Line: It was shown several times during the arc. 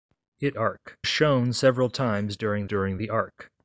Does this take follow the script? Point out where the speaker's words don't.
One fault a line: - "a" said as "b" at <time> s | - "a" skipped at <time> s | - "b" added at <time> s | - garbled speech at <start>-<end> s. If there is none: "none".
- "was" said as "arc" at 0.6 s
- "during" added at 2.7 s